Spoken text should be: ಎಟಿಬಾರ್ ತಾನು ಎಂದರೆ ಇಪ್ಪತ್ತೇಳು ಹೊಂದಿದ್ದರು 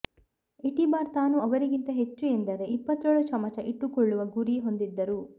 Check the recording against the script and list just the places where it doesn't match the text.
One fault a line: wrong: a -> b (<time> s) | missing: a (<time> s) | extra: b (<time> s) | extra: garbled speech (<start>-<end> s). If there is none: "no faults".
extra: ಅವರಿಗಿಂತ ಹೆಚ್ಚು (1.4 s)
extra: ಚಮಚ ಇಟ್ಟುಕೊಳ್ಳುವ ಗುರಿ (3.3 s)